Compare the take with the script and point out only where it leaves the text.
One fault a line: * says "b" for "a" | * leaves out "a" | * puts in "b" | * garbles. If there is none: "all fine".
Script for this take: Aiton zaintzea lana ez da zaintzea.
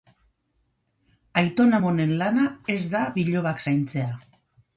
* says "amonen" for "zaintzea"
* puts in "bilobak"